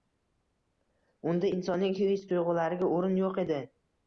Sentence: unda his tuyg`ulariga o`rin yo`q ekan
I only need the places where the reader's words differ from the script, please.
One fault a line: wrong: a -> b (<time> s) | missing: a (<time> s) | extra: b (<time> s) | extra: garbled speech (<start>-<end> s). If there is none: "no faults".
extra: insonning (1.6 s)
wrong: ekan -> edi (3.5 s)